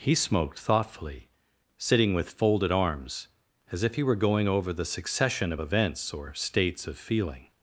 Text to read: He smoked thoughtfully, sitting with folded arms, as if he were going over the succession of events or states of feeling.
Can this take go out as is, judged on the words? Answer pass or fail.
pass